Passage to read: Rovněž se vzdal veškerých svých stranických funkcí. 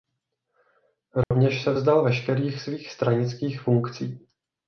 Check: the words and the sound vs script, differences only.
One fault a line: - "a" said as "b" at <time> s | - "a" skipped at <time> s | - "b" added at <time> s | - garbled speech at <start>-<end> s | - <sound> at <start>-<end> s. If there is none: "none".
- dropout at 1.2-1.3 s